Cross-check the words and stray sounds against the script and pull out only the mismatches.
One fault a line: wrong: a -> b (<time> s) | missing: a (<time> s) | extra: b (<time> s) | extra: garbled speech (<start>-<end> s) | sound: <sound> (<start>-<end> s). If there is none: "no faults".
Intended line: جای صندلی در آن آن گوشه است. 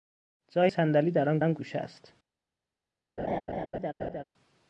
sound: laugh (3.2-4.2 s)